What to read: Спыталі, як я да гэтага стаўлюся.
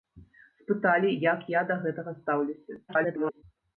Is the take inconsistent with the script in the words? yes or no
yes